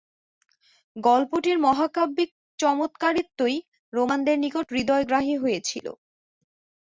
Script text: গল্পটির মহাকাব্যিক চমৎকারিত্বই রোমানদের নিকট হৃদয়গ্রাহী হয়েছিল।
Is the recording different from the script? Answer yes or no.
no